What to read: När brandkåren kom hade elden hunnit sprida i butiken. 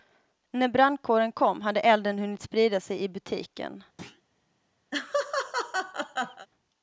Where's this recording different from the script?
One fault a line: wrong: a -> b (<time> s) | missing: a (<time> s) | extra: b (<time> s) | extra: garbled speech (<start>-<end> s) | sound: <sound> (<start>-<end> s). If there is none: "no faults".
extra: sig (2.8 s)
sound: thud (4.0-4.2 s)
sound: laugh (4.9-6.5 s)